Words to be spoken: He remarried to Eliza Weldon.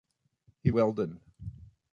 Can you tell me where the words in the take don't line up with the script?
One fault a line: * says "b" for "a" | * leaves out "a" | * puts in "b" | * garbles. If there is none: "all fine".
* leaves out "remarried to Eliza"